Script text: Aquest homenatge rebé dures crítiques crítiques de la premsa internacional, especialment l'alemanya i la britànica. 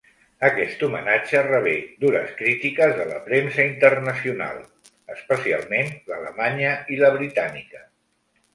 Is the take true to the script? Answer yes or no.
no